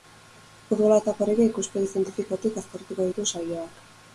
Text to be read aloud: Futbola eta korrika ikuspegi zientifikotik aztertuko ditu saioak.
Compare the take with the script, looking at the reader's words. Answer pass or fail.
pass